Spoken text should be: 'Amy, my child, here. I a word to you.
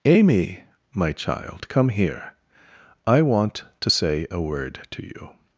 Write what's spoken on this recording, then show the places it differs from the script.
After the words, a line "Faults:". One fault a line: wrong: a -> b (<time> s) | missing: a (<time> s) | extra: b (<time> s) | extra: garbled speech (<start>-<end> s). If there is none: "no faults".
'Amy, my child, come here. I want to say a word to you.
Faults:
extra: come (1.7 s)
extra: want to say (3.2 s)